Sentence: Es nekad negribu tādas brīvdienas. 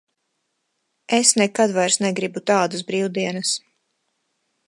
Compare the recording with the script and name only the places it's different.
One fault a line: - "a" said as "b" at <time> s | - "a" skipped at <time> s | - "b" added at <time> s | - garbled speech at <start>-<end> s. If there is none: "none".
- "vairs" added at 1.8 s